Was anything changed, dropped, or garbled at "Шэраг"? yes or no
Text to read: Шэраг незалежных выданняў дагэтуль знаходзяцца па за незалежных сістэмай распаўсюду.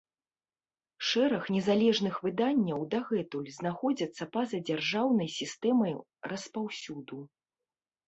no